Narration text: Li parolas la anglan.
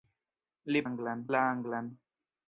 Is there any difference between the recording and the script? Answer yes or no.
yes